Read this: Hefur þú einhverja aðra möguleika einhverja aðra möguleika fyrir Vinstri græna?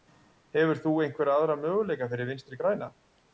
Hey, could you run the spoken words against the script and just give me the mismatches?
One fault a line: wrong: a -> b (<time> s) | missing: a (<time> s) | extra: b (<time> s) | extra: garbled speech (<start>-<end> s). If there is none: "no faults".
missing: einhverja aðra möguleika (2.1 s)